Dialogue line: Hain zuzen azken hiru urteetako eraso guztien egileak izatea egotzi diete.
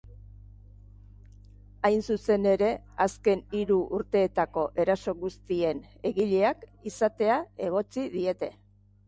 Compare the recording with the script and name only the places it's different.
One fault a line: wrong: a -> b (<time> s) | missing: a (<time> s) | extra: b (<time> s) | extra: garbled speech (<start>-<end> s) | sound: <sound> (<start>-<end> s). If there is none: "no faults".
extra: ere (2.5 s)